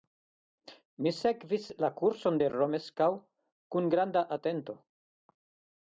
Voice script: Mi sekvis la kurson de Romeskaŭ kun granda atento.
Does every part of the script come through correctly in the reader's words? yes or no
yes